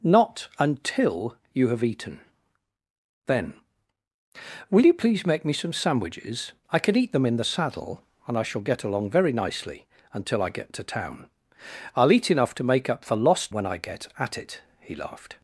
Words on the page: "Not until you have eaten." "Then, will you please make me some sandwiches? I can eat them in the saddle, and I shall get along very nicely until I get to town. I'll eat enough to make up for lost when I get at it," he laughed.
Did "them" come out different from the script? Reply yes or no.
no